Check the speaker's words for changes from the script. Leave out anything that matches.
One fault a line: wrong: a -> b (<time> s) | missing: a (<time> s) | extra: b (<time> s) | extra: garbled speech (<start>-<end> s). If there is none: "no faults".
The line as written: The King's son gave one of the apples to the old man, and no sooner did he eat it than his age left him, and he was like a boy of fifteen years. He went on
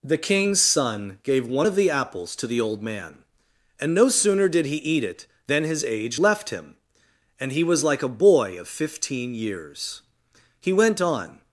no faults